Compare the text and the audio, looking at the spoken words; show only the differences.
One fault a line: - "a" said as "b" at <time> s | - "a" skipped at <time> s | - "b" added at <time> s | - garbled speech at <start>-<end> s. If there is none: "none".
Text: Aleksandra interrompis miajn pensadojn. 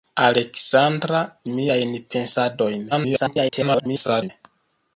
- "interrompis" skipped at 1.2 s
- garbled speech at 2.9-4.3 s